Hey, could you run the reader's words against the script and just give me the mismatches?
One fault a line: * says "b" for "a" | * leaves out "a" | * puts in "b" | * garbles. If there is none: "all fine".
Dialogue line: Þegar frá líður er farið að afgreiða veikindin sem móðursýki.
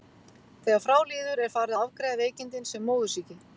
all fine